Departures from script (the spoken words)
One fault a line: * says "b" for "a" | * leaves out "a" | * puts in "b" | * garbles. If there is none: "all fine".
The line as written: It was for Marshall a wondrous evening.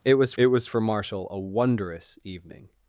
* puts in "it was"